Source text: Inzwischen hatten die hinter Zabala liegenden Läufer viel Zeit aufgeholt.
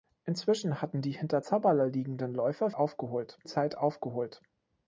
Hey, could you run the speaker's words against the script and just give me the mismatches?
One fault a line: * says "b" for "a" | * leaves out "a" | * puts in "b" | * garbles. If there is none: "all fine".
* says "aufgeholt" for "viel"